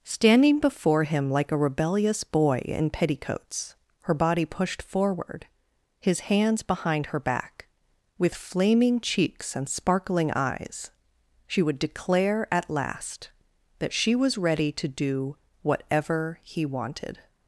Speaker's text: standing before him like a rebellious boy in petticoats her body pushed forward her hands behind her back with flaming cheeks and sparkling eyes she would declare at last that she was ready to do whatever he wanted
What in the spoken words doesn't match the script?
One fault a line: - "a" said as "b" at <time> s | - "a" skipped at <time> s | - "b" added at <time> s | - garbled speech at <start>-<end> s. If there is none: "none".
- "her" said as "his" at 6.0 s